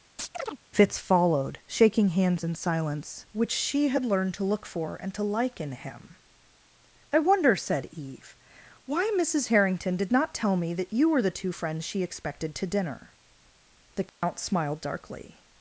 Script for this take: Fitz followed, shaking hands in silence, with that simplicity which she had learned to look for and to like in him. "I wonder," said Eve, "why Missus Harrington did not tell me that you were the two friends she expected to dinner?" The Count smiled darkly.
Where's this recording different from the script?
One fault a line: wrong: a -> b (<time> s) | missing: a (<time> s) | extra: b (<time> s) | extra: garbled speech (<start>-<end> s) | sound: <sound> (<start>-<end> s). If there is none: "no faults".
sound: chirp (0.2-0.6 s)
missing: with that simplicity (3.3 s)
sound: dropout (14.1-14.2 s)